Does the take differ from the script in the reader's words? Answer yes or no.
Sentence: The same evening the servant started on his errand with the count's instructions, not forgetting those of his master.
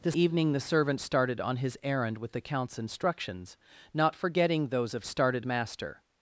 yes